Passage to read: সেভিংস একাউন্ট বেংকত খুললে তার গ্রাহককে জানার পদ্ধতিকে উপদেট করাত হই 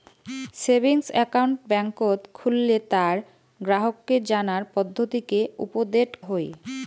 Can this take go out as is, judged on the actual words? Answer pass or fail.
fail